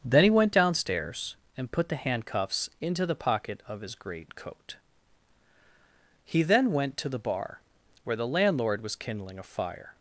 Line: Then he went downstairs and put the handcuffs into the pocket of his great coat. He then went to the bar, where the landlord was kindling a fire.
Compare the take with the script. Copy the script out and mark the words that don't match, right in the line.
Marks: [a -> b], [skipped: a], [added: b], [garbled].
Then he went downstairs and put the handcuffs into the pocket of his great coat. He then went to the bar, where the landlord was kindling a fire.